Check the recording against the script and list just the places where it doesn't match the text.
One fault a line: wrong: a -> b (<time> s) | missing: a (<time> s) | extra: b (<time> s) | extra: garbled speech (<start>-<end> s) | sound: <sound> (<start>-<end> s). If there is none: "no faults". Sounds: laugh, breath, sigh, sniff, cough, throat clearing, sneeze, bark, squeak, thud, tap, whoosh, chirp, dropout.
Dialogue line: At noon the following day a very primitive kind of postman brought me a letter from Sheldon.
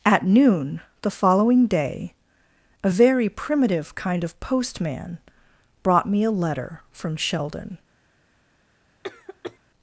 sound: cough (9.0-9.6 s)